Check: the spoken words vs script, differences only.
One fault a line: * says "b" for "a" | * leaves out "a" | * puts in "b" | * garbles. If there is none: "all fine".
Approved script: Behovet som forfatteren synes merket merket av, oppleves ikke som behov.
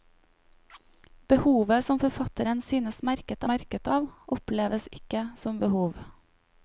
all fine